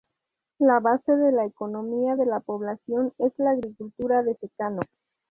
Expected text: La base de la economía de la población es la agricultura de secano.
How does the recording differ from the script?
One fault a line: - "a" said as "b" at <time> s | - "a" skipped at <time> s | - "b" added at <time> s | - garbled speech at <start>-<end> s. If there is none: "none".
none